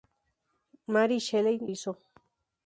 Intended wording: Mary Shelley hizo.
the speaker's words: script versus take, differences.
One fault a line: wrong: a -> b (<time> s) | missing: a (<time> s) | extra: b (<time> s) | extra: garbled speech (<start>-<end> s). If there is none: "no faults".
no faults